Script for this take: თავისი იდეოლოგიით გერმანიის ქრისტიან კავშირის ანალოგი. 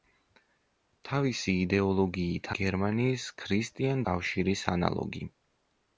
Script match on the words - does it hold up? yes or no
yes